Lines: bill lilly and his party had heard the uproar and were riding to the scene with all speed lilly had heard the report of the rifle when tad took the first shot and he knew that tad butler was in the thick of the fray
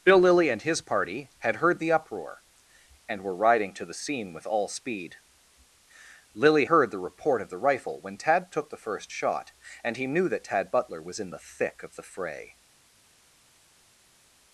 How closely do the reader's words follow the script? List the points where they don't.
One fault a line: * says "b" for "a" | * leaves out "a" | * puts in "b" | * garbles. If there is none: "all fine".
* leaves out "had"